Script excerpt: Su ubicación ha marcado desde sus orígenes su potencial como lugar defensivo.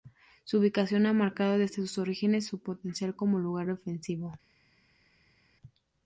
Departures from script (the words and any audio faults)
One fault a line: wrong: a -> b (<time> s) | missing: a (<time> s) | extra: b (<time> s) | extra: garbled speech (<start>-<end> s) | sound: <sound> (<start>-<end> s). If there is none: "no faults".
no faults